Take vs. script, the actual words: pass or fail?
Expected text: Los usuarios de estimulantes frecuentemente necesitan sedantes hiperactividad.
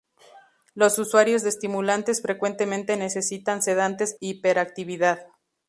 pass